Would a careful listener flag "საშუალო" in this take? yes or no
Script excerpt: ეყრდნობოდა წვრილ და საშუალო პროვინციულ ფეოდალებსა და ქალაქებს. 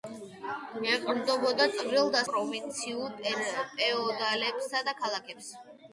yes